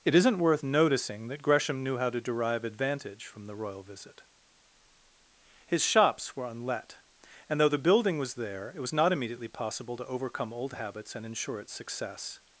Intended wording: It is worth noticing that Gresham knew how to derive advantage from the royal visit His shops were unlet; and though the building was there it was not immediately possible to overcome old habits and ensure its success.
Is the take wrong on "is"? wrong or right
wrong